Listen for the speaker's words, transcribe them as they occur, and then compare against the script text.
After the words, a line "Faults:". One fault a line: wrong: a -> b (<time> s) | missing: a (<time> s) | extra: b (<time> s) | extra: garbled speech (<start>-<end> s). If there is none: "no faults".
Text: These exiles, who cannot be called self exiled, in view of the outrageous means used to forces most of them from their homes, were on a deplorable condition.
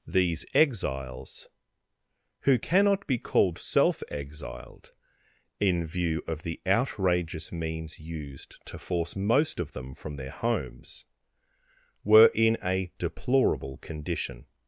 These exiles, who cannot be called self exiled, in view of the outrageous means used to force most of them from their homes, were in a deplorable condition.
Faults:
wrong: forces -> force (8.8 s)
wrong: on -> in (12.3 s)